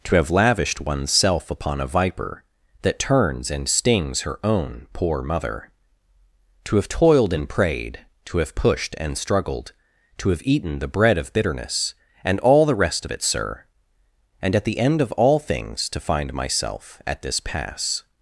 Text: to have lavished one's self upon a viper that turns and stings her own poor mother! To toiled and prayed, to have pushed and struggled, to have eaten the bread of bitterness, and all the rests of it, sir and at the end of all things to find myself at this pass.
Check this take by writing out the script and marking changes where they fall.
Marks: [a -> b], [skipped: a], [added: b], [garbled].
to have lavished one's self upon a viper that turns and stings her own poor mother! To [added: have] toiled and prayed, to have pushed and struggled, to have eaten the bread of bitterness, and all the [rests -> rest] of it, sir and at the end of all things to find myself at this pass.